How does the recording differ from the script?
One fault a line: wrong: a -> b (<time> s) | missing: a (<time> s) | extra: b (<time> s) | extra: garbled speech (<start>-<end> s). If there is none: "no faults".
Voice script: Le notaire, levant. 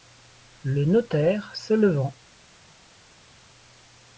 extra: se (1.6 s)